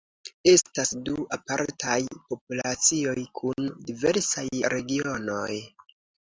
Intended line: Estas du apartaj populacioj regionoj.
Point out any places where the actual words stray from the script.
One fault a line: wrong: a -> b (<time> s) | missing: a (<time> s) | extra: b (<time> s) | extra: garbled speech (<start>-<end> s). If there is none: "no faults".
extra: kun diversaj (3.4 s)